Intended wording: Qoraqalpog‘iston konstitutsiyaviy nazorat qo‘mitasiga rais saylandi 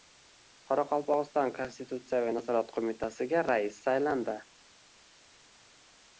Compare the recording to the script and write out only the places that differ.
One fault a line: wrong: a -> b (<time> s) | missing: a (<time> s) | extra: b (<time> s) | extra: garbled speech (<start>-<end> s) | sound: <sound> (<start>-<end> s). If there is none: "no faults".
no faults